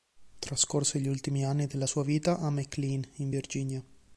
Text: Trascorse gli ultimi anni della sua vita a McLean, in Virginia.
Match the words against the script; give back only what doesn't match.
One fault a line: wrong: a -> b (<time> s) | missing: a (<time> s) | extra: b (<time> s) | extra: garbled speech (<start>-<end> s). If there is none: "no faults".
no faults